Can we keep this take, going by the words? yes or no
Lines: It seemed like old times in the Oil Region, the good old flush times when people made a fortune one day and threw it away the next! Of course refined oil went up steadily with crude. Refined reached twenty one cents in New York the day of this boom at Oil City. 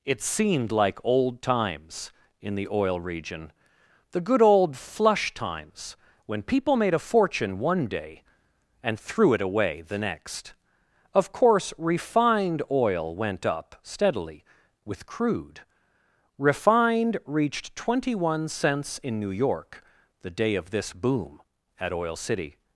yes